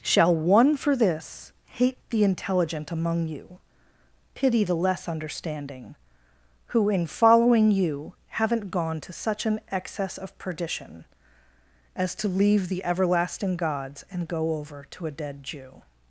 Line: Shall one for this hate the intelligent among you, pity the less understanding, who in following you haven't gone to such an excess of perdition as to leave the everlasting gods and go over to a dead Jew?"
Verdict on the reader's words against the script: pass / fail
pass